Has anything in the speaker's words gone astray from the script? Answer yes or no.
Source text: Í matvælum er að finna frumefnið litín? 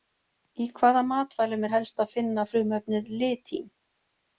yes